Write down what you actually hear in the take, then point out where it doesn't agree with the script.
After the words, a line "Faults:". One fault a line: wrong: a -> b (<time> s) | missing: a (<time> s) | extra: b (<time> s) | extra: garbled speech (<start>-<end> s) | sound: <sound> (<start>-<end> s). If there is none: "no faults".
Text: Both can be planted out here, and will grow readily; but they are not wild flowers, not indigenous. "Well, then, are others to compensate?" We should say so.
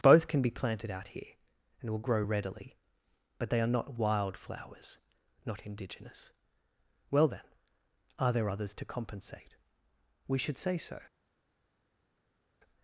Both can be planted out here, and will grow readily; but they are not wild flowers, not indigenous. "Well, then, are there others to compensate?" We should say so.
Faults:
extra: there (8.3 s)